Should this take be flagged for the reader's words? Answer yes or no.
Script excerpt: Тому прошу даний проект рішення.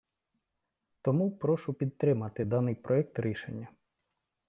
yes